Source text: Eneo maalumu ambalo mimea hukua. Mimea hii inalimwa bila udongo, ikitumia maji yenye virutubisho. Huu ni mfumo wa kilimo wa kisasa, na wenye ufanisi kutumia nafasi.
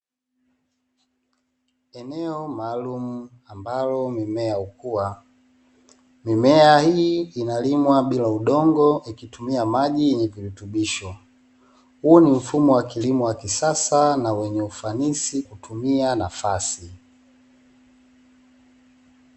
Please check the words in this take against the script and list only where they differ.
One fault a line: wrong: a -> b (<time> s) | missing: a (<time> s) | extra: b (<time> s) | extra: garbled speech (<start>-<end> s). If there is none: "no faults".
no faults